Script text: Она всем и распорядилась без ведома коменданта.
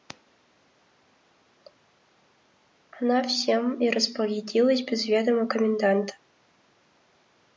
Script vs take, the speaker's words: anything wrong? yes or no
no